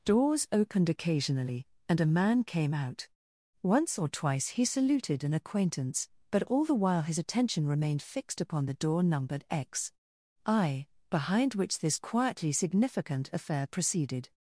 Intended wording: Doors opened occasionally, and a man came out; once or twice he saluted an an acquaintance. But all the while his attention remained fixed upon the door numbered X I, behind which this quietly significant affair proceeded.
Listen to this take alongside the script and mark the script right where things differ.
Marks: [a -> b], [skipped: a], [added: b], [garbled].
Doors opened occasionally, and a man came out; once or twice he saluted an [skipped: an] acquaintance. But all the while his attention remained fixed upon the door numbered X I, behind which this quietly significant affair proceeded.